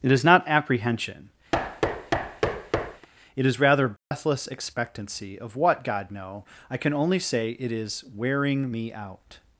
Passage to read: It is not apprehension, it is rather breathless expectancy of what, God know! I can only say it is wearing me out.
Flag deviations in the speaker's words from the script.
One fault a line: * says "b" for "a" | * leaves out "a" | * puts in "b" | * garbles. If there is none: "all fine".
all fine